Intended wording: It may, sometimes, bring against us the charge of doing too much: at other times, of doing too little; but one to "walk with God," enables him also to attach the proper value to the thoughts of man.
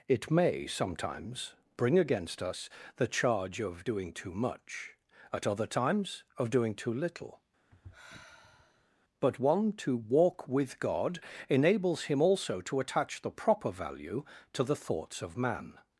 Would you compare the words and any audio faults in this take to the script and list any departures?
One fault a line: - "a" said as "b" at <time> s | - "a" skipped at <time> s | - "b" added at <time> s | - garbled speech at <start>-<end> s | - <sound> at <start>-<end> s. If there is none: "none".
- sigh at 7.7-8.9 s